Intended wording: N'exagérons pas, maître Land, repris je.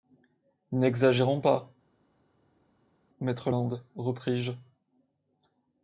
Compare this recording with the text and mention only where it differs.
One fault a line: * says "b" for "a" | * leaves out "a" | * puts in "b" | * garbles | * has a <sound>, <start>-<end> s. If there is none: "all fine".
all fine